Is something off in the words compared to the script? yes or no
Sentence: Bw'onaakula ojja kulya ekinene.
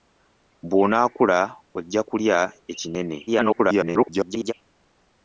yes